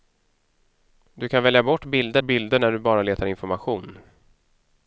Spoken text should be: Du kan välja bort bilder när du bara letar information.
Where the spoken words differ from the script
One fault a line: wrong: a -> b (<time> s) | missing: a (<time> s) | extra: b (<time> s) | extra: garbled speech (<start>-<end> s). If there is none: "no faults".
extra: bilder (2.2 s)